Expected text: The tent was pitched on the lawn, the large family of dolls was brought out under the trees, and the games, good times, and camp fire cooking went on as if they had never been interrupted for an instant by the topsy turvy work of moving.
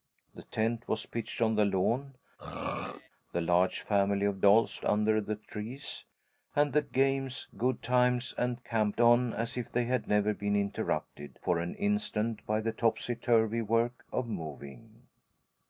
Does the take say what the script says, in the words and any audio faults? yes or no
no